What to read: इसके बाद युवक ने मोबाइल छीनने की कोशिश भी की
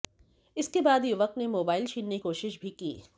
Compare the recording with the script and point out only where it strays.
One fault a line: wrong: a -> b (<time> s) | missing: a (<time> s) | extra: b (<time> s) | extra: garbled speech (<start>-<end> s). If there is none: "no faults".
missing: की (2.2 s)